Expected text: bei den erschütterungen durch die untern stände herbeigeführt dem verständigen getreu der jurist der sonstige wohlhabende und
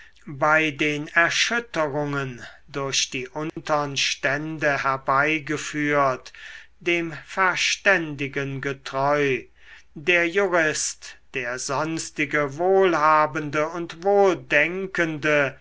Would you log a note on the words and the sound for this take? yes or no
yes